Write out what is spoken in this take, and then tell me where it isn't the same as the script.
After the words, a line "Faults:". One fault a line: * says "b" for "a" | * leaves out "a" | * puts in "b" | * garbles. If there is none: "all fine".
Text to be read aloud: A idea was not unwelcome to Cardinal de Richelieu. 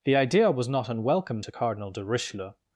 The idea was not unwelcome to Cardinal de Richelieu.
Faults:
* says "The" for "A"